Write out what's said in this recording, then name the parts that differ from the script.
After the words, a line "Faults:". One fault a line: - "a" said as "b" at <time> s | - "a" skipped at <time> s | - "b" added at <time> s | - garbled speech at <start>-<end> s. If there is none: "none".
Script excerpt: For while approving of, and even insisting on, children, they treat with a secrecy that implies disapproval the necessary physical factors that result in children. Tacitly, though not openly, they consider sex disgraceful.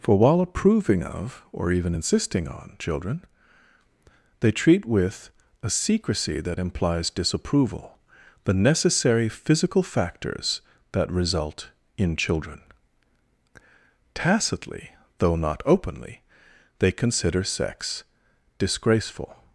For while approving of, or even insisting on, children, they treat with a secrecy that implies disapproval the necessary physical factors that result in children. Tacitly, though not openly, they consider sex disgraceful.
Faults:
- "and" said as "or" at 1.5 s